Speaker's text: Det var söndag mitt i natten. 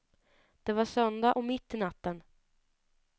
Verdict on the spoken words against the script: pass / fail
fail